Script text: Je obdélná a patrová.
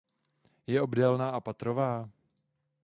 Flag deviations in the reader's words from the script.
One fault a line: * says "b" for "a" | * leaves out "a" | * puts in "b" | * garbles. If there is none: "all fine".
all fine